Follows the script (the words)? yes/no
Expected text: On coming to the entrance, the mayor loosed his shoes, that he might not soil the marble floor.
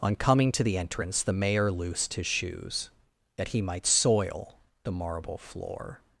no